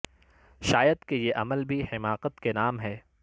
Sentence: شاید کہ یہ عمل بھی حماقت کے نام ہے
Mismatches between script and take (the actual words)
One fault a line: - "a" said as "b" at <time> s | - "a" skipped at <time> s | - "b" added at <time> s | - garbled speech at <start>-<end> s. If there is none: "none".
none